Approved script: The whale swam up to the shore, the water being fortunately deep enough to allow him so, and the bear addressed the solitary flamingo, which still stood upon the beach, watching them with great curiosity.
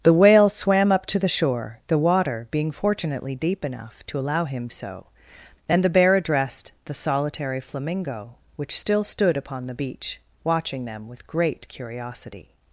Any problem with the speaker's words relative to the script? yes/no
no